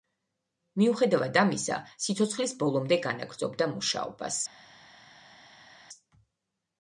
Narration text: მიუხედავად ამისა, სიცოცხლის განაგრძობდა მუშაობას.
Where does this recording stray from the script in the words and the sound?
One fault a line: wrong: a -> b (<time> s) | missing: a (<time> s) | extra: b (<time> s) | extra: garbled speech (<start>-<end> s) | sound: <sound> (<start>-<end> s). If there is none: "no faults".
extra: ბოლომდე (2.6 s)